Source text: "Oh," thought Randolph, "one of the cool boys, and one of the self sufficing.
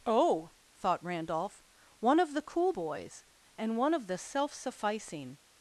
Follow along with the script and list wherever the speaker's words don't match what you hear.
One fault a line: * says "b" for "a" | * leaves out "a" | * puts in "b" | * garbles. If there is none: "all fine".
all fine